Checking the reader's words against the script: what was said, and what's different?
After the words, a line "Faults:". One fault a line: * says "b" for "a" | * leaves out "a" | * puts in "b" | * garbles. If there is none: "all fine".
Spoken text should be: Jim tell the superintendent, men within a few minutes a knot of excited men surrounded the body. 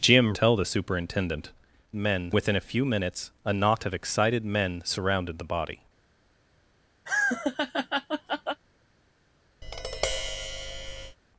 Jim tell the superintendent, men within a few minutes a knot of excited men surrounded the body.
Faults:
all fine